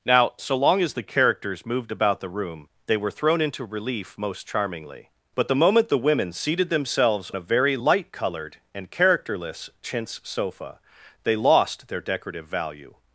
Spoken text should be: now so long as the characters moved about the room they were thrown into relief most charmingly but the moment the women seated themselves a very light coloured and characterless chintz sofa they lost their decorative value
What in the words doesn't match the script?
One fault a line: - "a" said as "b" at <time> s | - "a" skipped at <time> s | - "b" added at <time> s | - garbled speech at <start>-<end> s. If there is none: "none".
none